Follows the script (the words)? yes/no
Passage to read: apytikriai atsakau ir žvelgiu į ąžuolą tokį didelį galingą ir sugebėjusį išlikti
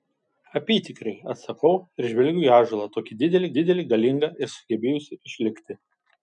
no